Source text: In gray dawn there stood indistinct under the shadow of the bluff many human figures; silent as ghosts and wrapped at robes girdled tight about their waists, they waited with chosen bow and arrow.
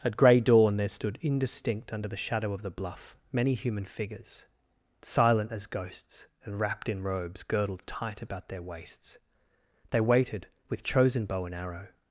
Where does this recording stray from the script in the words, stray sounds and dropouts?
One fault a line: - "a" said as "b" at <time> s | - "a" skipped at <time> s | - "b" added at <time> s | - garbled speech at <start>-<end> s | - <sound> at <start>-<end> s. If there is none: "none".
- "In" said as "At" at 0.0 s
- "at" said as "in" at 6.9 s